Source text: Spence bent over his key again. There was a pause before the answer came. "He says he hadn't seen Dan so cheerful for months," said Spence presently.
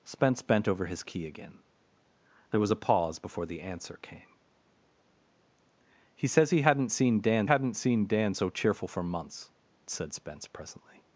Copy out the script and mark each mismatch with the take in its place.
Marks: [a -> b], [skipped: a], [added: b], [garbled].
Spence bent over his key again. There was a pause before the answer came. "He says he hadn't seen Dan [added: hadn't seen Dan] so cheerful for months," said Spence presently.